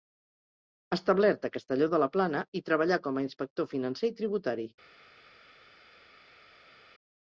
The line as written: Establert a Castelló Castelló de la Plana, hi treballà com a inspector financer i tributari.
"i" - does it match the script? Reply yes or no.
yes